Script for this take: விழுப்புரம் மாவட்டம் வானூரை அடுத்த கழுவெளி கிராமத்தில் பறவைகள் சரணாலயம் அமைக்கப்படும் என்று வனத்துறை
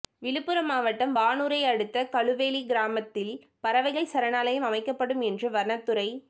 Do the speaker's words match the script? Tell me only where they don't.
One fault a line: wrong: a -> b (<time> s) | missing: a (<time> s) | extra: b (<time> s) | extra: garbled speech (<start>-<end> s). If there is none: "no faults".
no faults